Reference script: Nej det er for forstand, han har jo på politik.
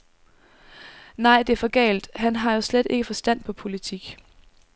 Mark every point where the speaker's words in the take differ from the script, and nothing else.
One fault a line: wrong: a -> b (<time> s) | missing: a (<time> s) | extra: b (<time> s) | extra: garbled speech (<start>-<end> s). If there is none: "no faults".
wrong: forstand -> galt (1.6 s)
extra: slet ikke forstand (2.6 s)